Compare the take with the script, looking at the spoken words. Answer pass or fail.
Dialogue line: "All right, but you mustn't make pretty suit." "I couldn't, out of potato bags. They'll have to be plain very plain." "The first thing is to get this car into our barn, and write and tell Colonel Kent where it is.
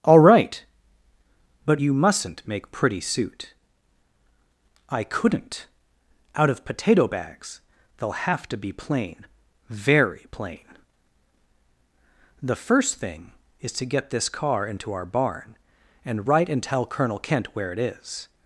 pass